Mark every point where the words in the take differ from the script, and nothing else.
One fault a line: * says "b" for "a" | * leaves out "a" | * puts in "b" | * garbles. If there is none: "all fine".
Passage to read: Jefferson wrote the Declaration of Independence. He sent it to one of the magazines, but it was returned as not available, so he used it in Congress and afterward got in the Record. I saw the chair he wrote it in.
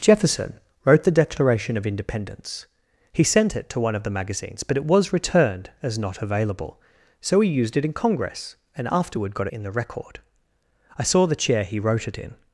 all fine